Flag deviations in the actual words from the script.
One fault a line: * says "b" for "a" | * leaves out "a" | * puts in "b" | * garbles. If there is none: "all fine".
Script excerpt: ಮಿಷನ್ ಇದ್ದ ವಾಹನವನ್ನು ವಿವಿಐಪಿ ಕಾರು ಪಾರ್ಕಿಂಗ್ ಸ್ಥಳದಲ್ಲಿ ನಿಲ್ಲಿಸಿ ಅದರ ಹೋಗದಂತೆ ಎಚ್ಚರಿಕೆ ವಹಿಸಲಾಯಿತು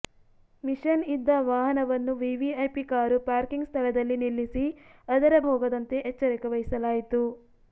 all fine